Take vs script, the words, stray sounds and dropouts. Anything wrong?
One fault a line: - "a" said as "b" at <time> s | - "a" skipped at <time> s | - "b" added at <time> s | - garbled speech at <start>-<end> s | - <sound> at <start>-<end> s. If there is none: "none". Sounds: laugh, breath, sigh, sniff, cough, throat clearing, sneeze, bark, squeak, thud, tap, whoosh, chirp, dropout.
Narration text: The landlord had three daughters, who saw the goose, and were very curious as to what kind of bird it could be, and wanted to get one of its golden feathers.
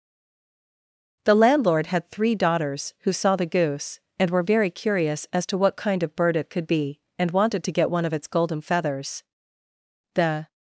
- "The" added at 10.1 s